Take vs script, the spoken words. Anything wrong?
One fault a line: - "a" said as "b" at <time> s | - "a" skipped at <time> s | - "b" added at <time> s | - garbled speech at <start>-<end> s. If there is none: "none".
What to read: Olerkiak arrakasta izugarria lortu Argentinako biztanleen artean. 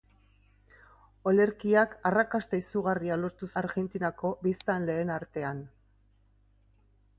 none